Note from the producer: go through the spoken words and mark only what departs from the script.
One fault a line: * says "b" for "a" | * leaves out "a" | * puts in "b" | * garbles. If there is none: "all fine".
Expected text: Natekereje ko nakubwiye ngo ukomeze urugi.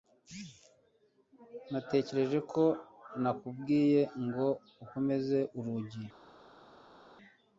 all fine